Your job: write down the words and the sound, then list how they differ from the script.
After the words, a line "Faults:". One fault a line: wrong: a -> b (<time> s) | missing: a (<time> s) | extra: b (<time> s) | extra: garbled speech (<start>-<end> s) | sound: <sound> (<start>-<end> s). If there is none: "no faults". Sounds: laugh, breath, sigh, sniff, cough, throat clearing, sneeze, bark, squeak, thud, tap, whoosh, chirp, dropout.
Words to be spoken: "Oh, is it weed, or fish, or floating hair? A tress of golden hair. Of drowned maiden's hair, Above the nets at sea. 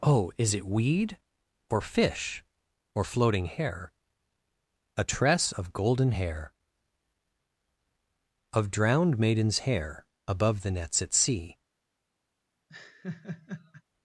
"Oh, is it weed, or fish, or floating hair? A tress of golden hair. Of drowned maiden's hair, Above the nets at sea.
Faults:
sound: laugh (12.7-13.8 s)